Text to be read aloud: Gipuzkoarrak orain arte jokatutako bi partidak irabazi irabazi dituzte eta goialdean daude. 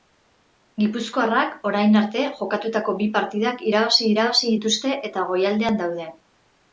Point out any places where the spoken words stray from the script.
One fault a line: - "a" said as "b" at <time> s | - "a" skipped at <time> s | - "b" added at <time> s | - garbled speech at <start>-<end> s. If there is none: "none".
none